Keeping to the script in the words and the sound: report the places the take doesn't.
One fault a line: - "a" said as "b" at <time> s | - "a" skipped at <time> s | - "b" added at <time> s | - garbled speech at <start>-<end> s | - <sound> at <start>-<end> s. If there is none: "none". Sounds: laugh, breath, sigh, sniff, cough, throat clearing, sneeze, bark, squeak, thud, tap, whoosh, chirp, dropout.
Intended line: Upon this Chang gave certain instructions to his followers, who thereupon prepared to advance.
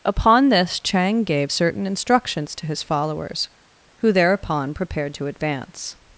none